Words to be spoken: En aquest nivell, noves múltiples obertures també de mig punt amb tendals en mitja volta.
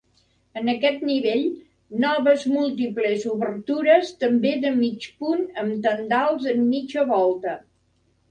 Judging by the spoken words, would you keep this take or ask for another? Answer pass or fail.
pass